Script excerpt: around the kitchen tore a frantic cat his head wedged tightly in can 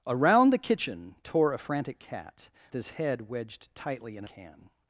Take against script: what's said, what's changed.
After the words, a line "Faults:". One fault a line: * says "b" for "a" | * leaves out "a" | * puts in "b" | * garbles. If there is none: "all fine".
around the kitchen tore a frantic cat his head wedged tightly in can
Faults:
all fine